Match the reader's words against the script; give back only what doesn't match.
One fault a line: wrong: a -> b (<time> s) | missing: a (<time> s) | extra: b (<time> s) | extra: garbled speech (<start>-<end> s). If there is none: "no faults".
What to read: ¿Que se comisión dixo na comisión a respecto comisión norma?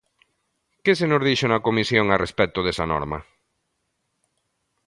wrong: comisión -> nos (1.1 s)
wrong: comisión -> desa (2.6 s)